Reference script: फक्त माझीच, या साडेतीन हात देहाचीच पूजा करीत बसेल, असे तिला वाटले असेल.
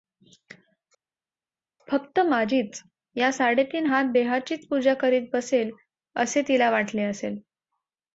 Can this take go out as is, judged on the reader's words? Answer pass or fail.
pass